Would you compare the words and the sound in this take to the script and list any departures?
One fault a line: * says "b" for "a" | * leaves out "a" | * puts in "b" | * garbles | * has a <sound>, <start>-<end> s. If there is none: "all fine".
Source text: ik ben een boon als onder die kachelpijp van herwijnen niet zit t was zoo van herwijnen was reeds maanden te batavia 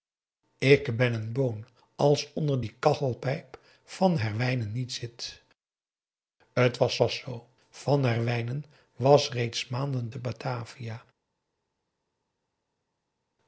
* puts in "was"